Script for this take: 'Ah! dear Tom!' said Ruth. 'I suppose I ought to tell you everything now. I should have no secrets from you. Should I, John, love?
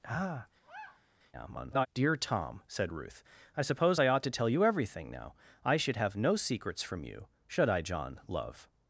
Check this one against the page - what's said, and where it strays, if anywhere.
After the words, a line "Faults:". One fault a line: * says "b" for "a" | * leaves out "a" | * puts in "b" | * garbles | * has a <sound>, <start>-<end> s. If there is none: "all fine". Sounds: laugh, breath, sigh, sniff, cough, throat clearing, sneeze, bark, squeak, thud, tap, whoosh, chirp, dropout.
'Ah! [garbled] dear Tom!' said Ruth. 'I suppose I ought to tell you everything now. I should have no secrets from you. Should I, John, love?
Faults:
* has a sigh, 0.6-1.1 s
* garbles